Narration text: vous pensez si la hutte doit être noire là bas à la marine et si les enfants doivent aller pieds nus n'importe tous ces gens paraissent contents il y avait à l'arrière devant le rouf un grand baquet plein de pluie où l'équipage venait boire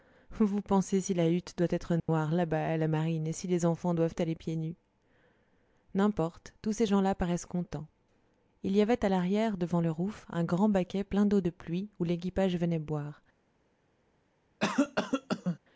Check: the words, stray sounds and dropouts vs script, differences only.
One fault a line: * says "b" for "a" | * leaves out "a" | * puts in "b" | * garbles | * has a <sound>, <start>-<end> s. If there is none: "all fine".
* has a dropout, 2.0-2.1 s
* puts in "là"
* puts in "d'eau"
* has a cough, 14.6-15.6 s